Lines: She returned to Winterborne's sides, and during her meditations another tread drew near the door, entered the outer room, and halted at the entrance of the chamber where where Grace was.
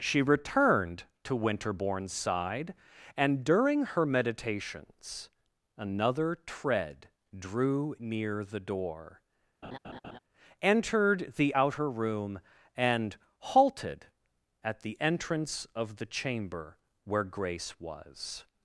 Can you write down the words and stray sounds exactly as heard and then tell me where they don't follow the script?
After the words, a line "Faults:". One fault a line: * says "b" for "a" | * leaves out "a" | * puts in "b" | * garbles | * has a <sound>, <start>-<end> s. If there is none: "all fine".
She returned to Winterborne's side, and during her meditations another tread drew near the door, entered the outer room, and halted at the entrance of the chamber where Grace was.
Faults:
* says "side" for "sides"
* has a laugh, 9.6-10.2 s
* leaves out "where"